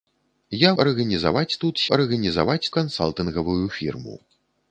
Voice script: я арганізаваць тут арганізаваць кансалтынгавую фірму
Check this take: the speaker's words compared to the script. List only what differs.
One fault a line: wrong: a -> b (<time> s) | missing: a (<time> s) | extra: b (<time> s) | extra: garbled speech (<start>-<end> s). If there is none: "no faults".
no faults